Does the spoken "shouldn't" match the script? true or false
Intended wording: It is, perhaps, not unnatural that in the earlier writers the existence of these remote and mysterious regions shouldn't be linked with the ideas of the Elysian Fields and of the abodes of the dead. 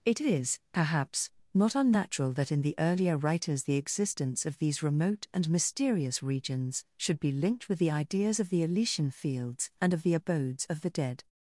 false